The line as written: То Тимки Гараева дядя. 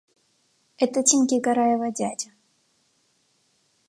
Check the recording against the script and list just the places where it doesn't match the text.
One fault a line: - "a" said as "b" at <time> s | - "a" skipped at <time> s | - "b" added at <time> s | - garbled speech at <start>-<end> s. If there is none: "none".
- "То" said as "Это" at 0.8 s